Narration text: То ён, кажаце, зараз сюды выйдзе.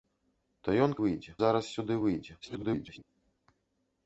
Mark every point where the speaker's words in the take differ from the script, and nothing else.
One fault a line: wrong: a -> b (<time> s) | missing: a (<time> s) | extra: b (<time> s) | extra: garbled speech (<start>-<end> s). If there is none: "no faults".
wrong: кажаце -> выйдзе (1.0 s)
extra: garbled speech (2.4-3.0 s)